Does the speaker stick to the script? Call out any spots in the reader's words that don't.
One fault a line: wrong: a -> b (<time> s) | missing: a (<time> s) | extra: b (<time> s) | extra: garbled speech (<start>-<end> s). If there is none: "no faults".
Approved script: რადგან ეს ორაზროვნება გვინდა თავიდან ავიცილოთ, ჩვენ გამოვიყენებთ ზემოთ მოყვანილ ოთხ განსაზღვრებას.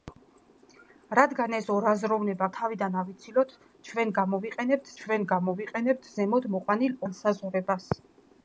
missing: გვინდა (2.5 s)
extra: ჩვენ გამოვიყენებთ (5.0 s)
missing: ოთხ (7.0 s)